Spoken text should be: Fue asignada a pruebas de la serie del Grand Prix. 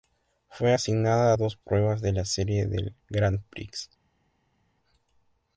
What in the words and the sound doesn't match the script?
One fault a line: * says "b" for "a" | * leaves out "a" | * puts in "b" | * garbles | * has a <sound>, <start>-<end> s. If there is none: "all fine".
* puts in "dos"